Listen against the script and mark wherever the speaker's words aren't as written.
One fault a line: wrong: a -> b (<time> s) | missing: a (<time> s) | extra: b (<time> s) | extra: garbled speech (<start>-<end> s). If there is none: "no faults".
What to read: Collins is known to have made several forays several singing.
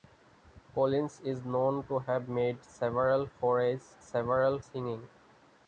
no faults